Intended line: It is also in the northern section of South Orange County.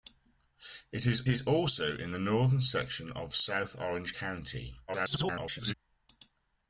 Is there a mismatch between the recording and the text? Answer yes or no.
yes